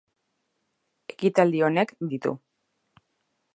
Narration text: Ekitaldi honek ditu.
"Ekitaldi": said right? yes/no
yes